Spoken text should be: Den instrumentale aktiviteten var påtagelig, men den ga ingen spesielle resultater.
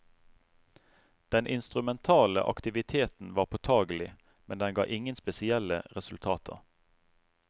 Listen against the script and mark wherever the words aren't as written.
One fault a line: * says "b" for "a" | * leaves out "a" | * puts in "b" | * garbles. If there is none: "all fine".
all fine